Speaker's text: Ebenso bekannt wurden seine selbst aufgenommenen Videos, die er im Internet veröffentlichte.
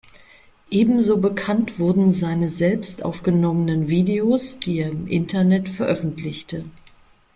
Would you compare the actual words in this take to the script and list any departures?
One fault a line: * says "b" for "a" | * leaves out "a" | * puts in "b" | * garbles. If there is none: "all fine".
all fine